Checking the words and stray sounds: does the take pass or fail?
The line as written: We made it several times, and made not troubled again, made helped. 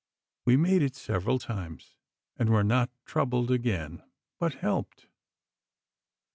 fail